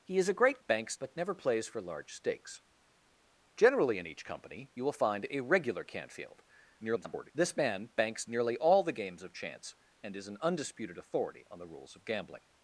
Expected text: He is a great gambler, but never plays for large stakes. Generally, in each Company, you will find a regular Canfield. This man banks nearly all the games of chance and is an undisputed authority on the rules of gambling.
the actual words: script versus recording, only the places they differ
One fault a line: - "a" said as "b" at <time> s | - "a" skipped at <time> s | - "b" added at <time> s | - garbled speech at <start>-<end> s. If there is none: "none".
- "gambler" said as "banks" at 0.6 s
- garbled speech at 6.8-7.3 s